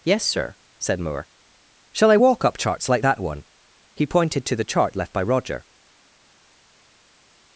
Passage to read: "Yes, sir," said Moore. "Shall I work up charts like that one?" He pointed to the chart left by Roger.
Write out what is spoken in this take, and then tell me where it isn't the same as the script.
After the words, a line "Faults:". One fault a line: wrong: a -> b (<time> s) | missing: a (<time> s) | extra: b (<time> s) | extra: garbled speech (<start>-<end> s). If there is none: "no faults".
"Yes, sir," said Moore. "Shall I walk up charts like that one?" He pointed to the chart left by Roger.
Faults:
wrong: work -> walk (2.1 s)